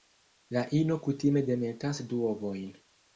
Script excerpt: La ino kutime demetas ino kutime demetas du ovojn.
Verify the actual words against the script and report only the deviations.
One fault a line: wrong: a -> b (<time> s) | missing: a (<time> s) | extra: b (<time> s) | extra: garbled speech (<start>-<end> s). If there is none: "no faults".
missing: ino kutime demetas (2.0 s)